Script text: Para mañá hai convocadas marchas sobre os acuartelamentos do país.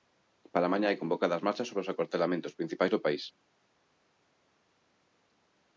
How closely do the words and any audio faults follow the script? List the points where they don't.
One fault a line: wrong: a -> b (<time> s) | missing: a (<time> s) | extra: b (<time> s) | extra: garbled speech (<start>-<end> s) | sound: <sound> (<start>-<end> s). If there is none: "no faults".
extra: principais (2.6 s)